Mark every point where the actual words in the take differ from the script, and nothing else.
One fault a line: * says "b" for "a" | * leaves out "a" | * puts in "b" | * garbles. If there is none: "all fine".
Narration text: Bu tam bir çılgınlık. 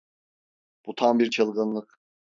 all fine